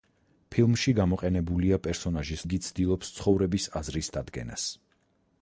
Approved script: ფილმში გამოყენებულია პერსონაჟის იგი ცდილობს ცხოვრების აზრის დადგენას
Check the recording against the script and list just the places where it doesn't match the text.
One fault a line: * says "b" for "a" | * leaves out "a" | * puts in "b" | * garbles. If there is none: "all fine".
all fine